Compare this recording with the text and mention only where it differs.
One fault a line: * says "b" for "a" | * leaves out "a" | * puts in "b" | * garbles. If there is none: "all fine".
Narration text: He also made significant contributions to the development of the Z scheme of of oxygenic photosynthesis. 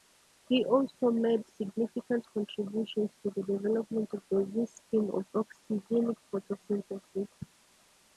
* leaves out "of"